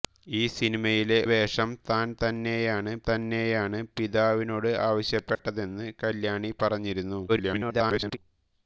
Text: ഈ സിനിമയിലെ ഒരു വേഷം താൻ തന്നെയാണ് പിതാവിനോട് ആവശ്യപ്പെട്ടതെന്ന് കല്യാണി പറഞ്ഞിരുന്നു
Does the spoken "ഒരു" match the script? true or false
false